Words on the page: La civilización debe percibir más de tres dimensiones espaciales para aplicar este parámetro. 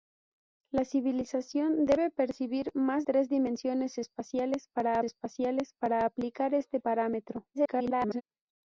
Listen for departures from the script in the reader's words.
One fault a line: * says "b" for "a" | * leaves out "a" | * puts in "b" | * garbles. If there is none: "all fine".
* leaves out "de"
* puts in "espaciales para"
* garbles